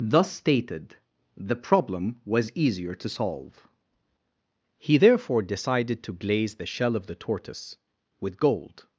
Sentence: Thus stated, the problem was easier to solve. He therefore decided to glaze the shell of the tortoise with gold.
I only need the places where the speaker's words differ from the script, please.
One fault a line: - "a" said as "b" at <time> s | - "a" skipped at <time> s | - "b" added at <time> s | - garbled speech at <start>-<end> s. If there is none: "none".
none